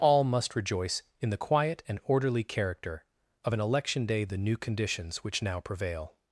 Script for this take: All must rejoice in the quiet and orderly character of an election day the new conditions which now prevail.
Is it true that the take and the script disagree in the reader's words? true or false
false